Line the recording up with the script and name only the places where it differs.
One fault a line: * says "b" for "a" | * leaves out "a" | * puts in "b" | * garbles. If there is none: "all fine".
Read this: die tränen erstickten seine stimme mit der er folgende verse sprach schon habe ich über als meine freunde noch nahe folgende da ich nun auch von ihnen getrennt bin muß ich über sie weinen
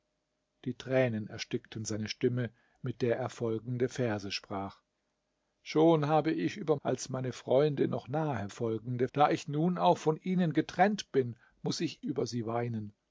all fine